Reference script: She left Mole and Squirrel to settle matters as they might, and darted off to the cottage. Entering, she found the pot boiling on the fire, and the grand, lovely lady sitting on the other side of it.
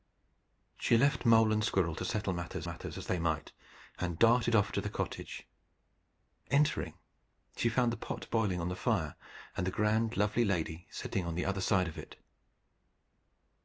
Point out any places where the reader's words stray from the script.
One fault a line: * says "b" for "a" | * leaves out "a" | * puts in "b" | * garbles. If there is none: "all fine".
* puts in "matters"